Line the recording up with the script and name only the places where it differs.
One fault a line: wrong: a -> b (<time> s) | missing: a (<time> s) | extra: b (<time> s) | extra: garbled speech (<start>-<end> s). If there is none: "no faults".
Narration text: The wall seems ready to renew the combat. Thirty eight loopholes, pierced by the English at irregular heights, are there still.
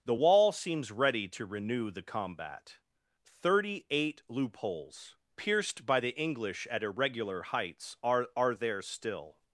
extra: are (8.4 s)